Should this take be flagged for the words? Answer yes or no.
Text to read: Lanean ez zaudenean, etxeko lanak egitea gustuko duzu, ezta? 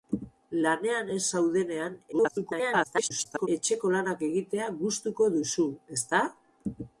yes